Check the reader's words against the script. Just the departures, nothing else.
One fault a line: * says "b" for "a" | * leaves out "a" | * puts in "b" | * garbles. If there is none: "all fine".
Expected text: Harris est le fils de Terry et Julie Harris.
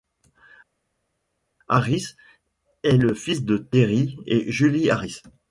all fine